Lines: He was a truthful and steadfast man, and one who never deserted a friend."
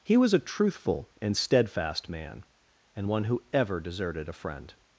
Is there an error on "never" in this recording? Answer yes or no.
yes